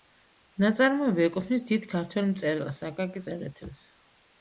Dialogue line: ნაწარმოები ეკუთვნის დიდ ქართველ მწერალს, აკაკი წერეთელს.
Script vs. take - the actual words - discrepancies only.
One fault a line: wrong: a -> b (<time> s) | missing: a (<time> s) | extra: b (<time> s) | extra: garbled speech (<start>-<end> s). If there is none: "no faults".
no faults